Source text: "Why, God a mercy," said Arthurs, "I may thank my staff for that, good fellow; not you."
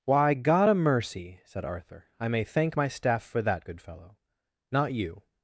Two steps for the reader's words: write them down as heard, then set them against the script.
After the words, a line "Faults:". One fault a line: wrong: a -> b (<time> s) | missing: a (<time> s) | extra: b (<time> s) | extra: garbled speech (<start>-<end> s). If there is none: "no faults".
"Why, God a mercy," said Arthur, "I may thank my staff for that, good fellow; not you."
Faults:
wrong: Arthurs -> Arthur (1.7 s)